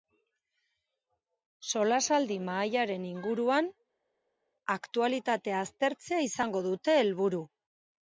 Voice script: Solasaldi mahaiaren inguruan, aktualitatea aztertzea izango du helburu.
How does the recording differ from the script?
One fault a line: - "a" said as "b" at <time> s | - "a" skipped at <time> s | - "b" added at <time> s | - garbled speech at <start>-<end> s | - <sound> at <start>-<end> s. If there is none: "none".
- "du" said as "dute" at 6.7 s